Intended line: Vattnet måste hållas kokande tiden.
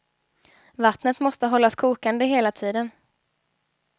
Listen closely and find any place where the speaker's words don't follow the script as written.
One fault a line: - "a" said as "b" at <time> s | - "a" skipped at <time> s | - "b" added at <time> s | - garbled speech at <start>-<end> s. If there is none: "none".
- "hela" added at 2.2 s